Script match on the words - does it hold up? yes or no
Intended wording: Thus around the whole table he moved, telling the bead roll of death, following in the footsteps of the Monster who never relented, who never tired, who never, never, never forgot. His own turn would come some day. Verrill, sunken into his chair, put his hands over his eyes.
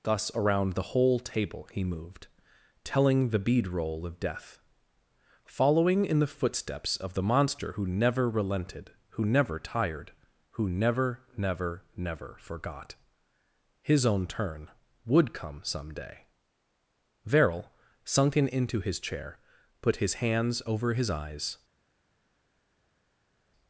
yes